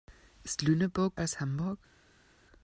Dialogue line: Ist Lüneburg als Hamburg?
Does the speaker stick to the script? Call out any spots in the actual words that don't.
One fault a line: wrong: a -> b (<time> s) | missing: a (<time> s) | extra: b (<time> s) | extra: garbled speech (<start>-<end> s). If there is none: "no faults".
no faults